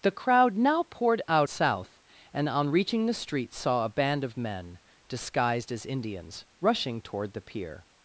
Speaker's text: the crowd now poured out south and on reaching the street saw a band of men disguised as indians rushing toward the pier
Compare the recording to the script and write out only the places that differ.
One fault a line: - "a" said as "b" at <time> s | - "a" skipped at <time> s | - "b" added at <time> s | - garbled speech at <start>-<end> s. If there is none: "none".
none